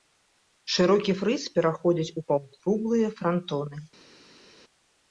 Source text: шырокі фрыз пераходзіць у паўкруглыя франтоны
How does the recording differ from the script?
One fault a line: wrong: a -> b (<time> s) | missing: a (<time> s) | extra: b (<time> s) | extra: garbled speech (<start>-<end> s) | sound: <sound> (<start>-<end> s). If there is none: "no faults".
no faults